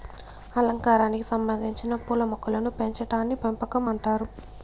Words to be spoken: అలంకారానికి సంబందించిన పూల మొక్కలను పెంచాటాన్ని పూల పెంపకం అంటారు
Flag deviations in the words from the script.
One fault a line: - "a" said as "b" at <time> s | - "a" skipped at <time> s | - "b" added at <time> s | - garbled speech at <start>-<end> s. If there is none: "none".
- "పూల" skipped at 3.4 s